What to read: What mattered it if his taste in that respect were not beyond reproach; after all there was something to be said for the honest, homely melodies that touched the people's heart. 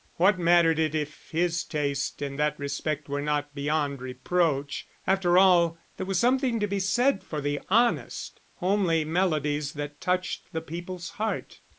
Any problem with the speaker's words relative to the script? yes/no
no